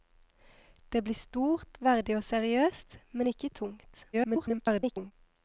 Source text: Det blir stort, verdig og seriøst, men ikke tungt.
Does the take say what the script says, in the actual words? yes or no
no